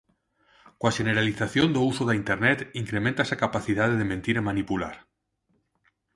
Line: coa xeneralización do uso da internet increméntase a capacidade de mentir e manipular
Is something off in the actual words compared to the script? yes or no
no